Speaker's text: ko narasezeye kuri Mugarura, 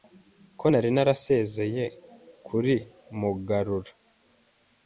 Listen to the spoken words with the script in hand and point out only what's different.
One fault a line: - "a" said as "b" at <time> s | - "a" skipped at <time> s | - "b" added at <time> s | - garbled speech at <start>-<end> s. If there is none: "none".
- "nari" added at 0.7 s